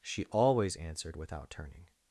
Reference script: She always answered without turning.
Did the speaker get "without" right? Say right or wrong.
right